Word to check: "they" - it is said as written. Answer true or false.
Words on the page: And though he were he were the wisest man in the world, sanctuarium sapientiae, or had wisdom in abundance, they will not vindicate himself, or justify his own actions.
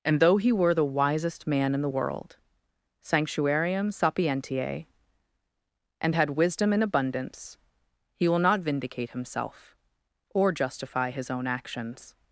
false